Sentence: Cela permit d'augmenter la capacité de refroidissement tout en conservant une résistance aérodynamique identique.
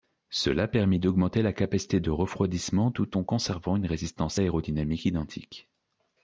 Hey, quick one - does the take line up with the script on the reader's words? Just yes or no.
yes